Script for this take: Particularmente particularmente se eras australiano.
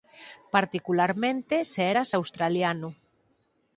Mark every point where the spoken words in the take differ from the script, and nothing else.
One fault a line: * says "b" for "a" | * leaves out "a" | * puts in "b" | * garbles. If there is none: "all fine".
* leaves out "particularmente"